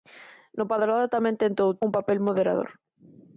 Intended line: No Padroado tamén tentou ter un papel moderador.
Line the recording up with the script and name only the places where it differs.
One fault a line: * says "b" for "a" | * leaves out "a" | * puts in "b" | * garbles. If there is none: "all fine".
* leaves out "ter"